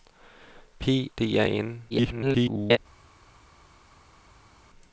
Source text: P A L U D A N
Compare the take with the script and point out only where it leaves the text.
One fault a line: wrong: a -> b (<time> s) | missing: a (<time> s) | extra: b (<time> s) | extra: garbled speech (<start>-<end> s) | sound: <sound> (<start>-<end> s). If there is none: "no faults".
missing: A L U (1.1 s)
extra: garbled speech (1.9-2.8 s)